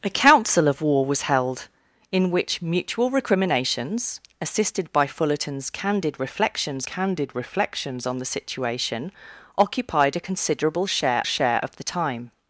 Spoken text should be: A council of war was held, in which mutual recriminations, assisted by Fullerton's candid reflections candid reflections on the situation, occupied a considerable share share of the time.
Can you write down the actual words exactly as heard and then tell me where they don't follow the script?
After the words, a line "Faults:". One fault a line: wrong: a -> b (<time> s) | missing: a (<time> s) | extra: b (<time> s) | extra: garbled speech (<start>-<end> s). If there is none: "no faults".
A council of war was held, in which mutual recriminations, assisted by Fullerton's candid reflections candid reflections on the situation, occupied a considerable share share of the time.
Faults:
no faults